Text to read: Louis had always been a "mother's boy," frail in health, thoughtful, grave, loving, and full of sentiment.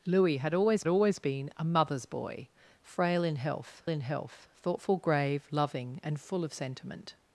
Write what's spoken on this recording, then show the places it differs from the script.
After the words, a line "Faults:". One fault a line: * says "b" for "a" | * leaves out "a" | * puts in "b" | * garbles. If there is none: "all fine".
Louis had always always been a "mother's boy," frail in health in health, thoughtful, grave, loving, and full of sentiment.
Faults:
* puts in "always"
* puts in "in health"